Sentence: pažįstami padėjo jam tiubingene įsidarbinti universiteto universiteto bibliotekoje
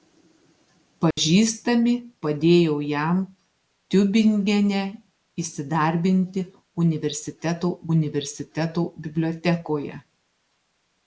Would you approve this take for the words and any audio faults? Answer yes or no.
no